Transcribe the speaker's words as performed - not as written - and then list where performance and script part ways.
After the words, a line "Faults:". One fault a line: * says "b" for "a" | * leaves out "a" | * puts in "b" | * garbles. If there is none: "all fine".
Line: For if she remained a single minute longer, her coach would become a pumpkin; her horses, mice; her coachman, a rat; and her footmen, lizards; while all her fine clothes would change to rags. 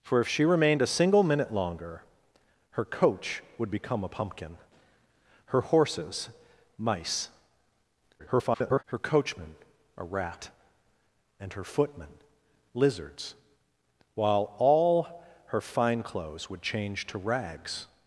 For if she remained a single minute longer, her coach would become a pumpkin; her horses, mice; [garbled] her coachman, a rat; and her footmen, lizards; while all her fine clothes would change to rags.
Faults:
* garbles